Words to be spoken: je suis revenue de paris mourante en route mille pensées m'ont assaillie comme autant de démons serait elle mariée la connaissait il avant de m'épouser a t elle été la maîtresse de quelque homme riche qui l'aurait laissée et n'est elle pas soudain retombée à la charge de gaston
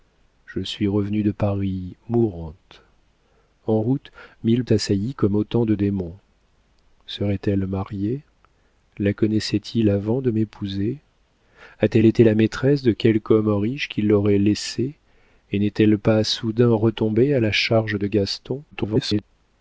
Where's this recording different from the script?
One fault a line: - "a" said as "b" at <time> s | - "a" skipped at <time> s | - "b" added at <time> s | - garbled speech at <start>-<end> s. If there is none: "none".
- "pensées m'ont" skipped at 4.7 s
- garbled speech at 18.7-19.2 s